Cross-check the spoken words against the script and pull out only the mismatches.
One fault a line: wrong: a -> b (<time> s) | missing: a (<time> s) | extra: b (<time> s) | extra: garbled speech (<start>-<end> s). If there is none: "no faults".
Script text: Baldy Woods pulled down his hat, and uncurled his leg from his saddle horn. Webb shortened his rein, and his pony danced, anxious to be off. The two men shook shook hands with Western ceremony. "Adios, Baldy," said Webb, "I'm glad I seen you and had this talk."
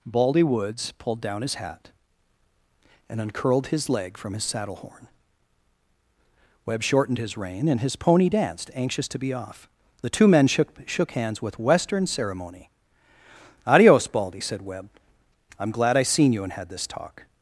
no faults